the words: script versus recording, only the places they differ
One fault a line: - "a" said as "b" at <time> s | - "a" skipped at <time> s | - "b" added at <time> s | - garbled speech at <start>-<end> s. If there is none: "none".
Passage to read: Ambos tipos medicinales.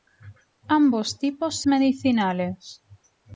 none